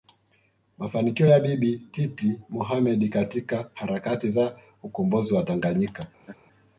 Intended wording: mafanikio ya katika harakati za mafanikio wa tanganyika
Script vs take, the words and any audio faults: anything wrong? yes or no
yes